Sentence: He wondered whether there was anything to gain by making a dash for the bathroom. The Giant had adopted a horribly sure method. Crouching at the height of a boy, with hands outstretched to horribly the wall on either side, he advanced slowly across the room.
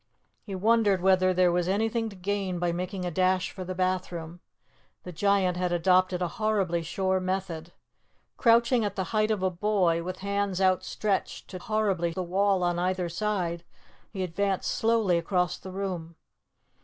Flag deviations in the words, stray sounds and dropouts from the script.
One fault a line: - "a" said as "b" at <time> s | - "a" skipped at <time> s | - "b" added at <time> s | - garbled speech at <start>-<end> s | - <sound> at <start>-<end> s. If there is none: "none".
none